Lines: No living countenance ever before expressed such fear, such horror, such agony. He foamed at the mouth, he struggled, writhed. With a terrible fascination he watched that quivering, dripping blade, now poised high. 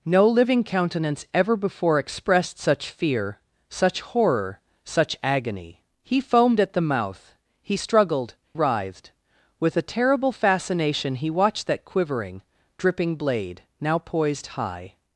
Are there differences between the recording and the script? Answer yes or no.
no